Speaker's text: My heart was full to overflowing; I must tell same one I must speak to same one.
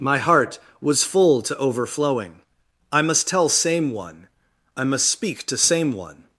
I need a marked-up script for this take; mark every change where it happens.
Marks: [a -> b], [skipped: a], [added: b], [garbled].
My heart was full to overflowing; I must tell same one I must speak to same one.